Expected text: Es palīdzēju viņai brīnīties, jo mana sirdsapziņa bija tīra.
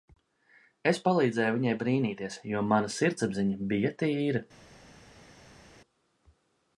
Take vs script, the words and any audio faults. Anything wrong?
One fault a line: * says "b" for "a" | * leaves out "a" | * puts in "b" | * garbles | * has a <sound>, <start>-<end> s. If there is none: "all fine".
all fine